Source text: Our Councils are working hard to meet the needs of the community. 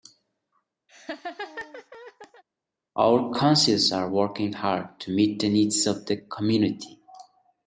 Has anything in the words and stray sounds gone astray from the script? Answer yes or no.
yes